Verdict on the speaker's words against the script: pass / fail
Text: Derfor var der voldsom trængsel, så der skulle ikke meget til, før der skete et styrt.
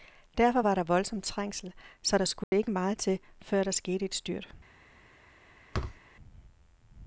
pass